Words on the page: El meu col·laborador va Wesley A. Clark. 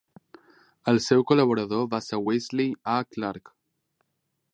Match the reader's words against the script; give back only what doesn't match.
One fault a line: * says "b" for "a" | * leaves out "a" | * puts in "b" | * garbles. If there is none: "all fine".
* says "seu" for "meu"
* puts in "ser"